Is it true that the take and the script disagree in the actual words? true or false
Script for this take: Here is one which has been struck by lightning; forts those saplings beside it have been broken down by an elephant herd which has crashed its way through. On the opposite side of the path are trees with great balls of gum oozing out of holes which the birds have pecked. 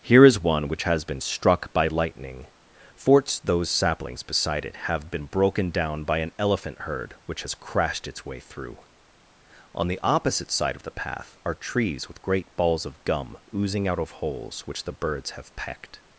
false